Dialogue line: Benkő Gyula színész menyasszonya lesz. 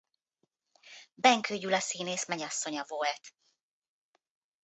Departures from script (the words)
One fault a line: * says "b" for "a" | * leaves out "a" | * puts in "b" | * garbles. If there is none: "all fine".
* says "volt" for "lesz"